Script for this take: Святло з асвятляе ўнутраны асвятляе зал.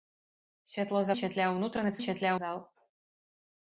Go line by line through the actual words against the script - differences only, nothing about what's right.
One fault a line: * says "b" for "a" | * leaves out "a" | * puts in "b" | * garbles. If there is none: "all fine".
all fine